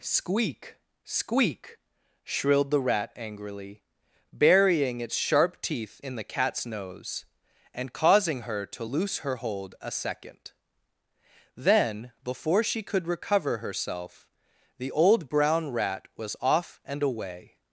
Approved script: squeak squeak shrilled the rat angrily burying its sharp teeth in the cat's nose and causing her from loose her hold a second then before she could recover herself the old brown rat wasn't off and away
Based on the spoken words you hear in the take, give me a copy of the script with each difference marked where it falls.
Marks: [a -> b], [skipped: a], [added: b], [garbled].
squeak squeak shrilled the rat angrily burying its sharp teeth in the cat's nose and causing her [from -> to] loose her hold a second then before she could recover herself the old brown rat [wasn't -> was] off and away